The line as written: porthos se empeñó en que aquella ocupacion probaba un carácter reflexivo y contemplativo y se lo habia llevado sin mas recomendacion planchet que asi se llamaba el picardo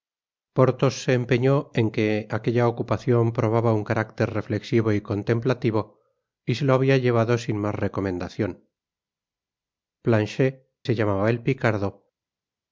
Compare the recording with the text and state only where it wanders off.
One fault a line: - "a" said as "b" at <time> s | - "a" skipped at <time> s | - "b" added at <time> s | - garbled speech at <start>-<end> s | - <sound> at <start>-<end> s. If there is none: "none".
- "que asi" skipped at 10.7 s